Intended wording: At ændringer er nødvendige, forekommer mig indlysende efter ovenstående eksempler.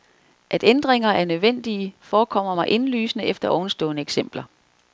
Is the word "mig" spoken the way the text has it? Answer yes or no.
yes